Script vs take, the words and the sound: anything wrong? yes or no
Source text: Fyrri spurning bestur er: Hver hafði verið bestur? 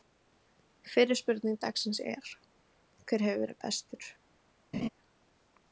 yes